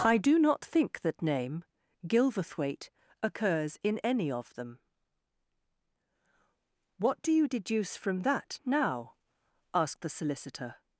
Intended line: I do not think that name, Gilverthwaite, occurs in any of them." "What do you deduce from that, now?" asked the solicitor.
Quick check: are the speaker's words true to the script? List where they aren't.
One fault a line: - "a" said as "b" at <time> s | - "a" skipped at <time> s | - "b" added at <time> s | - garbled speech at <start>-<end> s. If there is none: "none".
none